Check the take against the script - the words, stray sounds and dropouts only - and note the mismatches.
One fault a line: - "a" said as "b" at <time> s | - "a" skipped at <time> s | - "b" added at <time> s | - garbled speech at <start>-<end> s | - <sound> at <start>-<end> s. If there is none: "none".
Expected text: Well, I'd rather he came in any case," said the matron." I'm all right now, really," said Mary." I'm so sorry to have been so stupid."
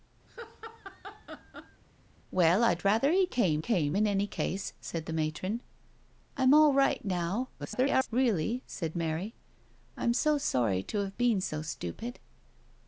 - laugh at 0.3-1.8 s
- "came" added at 3.6 s
- garbled speech at 7.6-8.1 s